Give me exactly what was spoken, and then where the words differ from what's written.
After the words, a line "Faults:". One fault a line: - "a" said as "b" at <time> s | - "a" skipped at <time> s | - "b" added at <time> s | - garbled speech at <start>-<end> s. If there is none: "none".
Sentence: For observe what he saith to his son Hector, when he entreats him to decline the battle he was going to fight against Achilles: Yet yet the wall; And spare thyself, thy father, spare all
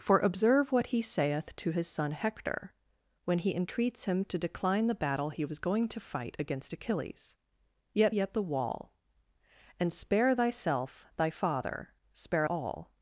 For observe what he saith to his son Hector, when he entreats him to decline the battle he was going to fight against Achilles: Yet yet the wall; And spare thyself, thy father, spare all
Faults:
none